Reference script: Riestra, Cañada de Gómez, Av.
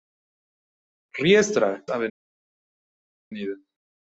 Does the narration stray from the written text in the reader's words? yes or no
yes